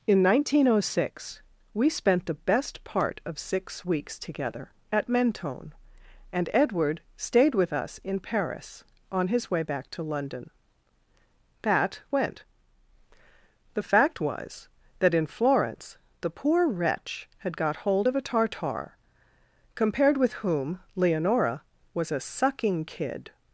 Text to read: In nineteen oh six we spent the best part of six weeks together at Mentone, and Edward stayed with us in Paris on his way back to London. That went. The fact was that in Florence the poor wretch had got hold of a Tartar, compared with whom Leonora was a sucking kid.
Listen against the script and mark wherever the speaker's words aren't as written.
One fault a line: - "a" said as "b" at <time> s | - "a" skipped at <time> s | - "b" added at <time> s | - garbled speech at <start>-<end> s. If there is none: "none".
none